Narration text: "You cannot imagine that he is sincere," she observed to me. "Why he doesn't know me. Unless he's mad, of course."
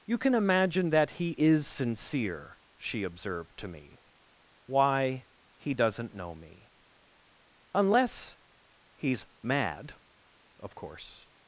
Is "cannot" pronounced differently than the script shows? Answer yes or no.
yes